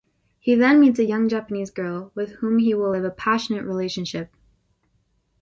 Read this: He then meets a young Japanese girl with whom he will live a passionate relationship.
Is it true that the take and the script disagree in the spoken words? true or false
false